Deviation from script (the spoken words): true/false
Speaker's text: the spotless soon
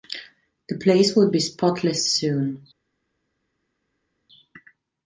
true